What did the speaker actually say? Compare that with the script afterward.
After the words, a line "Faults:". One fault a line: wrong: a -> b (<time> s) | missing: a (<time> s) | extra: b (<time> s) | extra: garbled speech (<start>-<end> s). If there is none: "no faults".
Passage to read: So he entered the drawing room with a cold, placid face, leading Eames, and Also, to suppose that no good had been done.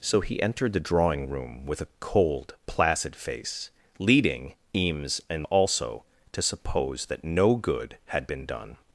So he entered the drawing room with a cold, placid face, leading Eames, and Also, to suppose that no good had been done.
Faults:
no faults